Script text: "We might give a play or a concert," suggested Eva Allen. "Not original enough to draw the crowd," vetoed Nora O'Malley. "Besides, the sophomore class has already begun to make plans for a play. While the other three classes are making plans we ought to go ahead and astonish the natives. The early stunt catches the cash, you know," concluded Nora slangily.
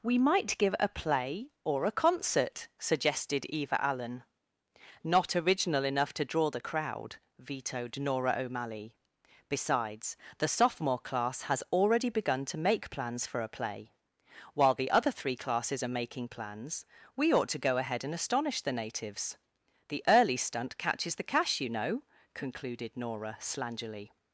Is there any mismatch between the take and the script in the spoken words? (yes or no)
no